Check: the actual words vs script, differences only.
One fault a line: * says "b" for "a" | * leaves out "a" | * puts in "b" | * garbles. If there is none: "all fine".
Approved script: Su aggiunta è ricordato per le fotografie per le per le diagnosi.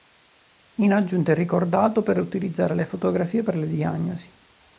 * says "In" for "Su"
* puts in "utilizzare"
* leaves out "per le"